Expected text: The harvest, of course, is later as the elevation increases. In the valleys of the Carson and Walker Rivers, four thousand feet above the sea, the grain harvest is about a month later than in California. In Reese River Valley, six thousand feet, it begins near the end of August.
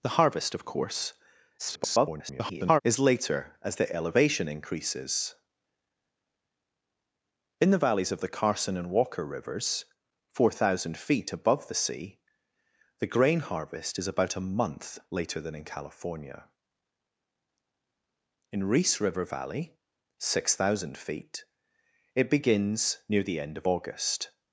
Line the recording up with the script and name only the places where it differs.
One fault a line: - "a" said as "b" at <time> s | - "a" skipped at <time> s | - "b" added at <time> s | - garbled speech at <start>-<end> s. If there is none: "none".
- garbled speech at 1.6-2.8 s